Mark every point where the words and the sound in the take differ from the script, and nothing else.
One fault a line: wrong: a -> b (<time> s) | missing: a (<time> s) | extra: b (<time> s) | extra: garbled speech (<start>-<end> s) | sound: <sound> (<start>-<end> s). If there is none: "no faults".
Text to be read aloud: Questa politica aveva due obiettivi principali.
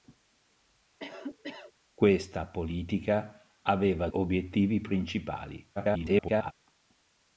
sound: cough (1.0-1.7 s)
missing: due (4.1 s)
extra: garbled speech (5.8-6.5 s)